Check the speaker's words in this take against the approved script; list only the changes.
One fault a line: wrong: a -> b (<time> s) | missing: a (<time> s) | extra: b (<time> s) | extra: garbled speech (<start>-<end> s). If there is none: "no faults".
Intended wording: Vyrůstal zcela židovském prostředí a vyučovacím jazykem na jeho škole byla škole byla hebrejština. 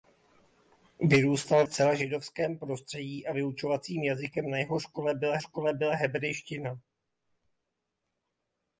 no faults